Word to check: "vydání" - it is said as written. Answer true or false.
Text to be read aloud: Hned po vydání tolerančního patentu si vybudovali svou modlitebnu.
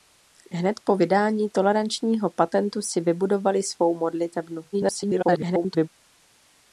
true